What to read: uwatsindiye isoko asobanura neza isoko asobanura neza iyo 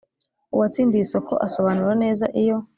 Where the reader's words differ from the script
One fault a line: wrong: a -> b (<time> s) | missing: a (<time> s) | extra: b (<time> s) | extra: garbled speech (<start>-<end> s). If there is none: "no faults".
missing: isoko asobanura neza (2.2 s)